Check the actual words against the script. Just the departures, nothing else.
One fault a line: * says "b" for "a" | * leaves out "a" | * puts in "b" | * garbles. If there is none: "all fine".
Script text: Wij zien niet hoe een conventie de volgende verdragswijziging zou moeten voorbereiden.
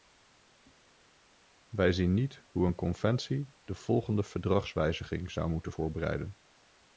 all fine